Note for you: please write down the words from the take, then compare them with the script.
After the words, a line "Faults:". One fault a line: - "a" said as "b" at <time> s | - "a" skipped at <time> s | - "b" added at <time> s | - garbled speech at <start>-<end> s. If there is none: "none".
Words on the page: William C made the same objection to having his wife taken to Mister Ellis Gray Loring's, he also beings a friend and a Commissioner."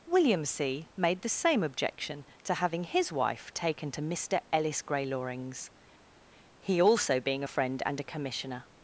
William C made the same objection to having his wife taken to Mister Ellis Gray Loring's, he also being a friend and a Commissioner."
Faults:
- "beings" said as "being" at 7.2 s